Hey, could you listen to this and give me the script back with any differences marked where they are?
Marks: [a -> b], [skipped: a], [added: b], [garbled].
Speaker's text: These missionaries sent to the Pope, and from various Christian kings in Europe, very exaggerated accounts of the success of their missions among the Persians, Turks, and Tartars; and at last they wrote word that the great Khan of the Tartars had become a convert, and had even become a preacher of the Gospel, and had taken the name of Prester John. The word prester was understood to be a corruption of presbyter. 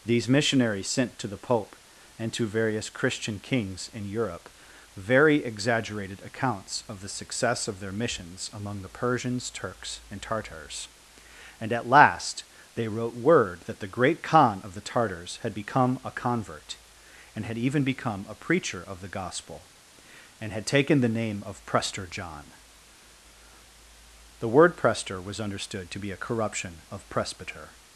These missionaries sent to the Pope, and [from -> to] various Christian kings in Europe, very exaggerated accounts of the success of their missions among the Persians, Turks, and Tartars; and at last they wrote word that the great Khan of the Tartars had become a convert, and had even become a preacher of the Gospel, and had taken the name of Prester John. The word prester was understood to be a corruption of presbyter.